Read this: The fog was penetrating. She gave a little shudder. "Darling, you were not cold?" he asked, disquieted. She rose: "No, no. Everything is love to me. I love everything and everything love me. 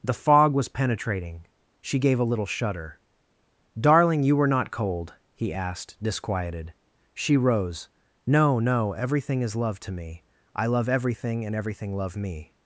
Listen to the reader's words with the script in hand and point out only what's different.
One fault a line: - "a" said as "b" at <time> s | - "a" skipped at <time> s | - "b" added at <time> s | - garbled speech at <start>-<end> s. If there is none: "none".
none